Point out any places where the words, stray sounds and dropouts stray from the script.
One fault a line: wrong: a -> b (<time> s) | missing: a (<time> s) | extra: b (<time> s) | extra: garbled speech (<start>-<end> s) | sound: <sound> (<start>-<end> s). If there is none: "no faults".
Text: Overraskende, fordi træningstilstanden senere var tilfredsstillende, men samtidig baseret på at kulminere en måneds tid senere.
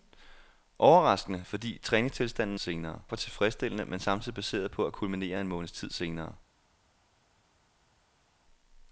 no faults